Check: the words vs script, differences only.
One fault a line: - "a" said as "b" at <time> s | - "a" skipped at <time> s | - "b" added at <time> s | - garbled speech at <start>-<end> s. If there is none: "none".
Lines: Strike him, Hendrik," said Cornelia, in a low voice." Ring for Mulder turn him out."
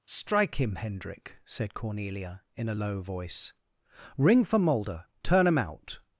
none